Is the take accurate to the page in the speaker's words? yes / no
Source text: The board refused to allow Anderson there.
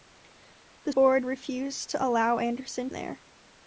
yes